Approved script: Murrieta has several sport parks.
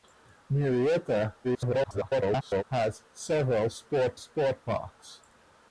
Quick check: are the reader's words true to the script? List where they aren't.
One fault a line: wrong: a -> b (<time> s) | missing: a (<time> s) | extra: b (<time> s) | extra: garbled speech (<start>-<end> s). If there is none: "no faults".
extra: garbled speech (1.4-2.6 s)
extra: sport (4.2 s)